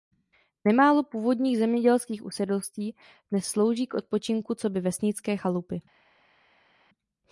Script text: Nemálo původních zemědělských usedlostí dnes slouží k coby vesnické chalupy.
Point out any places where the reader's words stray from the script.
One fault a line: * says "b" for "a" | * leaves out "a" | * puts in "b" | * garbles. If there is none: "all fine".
* puts in "odpočinku"